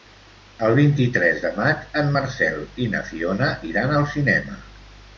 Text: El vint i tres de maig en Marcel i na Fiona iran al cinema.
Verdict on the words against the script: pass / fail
pass